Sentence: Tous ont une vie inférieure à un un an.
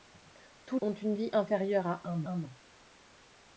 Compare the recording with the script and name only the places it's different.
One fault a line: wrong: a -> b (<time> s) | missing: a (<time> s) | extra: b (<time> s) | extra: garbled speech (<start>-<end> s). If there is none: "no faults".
no faults